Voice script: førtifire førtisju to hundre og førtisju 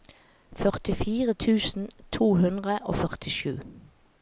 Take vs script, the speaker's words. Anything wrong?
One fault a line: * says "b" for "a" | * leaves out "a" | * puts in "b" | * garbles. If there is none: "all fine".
* says "tusen" for "førtisju"